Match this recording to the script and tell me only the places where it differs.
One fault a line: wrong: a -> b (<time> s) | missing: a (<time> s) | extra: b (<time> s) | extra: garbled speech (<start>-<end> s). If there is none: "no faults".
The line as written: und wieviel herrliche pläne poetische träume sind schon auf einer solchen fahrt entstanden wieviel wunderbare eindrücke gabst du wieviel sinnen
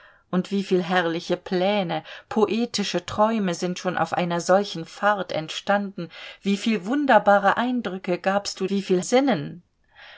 no faults